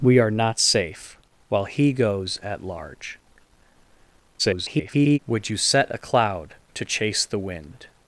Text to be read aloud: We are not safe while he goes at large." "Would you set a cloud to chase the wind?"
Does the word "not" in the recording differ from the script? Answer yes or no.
no